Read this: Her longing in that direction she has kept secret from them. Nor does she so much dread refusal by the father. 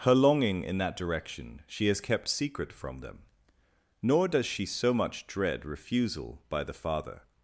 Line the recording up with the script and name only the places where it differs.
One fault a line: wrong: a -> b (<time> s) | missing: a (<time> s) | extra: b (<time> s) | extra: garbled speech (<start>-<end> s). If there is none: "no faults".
no faults